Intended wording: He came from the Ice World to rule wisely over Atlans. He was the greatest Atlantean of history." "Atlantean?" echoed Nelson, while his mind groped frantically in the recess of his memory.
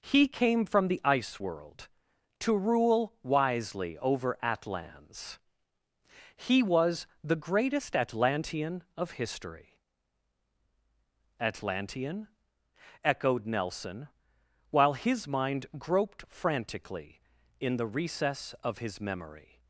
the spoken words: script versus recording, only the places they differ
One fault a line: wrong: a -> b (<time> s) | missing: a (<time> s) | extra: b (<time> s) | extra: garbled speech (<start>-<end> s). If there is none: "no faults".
no faults